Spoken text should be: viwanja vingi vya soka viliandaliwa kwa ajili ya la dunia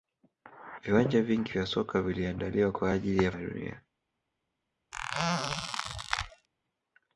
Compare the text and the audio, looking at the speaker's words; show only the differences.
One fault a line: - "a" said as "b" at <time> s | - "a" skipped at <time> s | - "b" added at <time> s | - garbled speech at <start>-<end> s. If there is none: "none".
none